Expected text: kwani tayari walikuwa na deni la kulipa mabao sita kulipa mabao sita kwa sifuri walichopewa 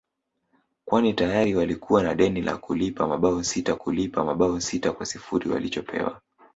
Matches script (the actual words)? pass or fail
pass